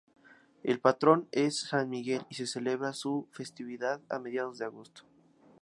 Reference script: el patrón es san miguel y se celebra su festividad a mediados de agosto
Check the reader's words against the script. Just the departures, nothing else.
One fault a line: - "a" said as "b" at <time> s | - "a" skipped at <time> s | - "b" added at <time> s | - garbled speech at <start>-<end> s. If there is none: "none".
none